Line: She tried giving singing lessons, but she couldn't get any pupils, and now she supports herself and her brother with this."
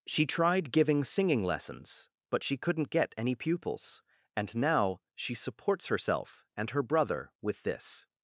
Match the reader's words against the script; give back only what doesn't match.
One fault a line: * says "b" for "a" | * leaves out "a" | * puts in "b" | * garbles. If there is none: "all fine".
all fine